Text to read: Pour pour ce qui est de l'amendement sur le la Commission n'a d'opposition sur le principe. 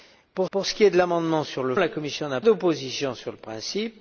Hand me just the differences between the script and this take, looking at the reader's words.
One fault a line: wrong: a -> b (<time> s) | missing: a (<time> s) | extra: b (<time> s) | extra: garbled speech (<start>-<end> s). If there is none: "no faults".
no faults